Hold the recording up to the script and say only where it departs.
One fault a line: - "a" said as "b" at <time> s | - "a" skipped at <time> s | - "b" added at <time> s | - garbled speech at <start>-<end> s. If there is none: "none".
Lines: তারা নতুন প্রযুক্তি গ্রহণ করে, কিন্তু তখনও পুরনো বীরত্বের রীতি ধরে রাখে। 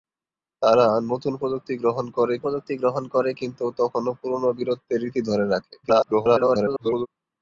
- "প্রযুক্তি গ্রহণ করে" added at 2.4 s
- garbled speech at 5.8-7.1 s